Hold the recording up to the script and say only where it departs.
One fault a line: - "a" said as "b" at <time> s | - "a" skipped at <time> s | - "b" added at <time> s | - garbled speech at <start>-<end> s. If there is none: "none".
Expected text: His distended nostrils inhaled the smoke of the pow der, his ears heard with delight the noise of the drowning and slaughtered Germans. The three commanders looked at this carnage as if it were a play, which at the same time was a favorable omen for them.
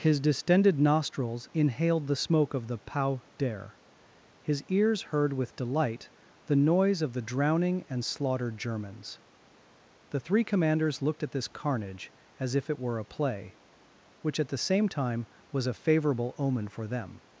none